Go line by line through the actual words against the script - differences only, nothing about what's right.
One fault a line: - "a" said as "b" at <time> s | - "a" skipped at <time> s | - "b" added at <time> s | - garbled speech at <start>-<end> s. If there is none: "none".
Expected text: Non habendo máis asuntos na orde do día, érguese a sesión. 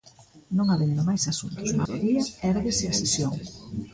- "orde" skipped at 1.8 s